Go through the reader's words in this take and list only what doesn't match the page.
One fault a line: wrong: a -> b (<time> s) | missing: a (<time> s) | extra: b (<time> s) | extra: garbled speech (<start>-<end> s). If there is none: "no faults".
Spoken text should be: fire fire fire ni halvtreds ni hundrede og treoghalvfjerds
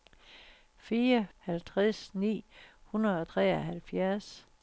missing: fire fire ni (1.3 s)